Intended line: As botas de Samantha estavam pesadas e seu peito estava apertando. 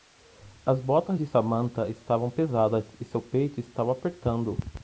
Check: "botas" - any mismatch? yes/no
no